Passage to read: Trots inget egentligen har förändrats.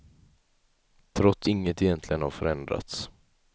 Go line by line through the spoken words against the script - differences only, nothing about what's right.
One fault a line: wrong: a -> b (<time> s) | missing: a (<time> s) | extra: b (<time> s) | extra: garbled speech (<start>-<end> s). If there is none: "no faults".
no faults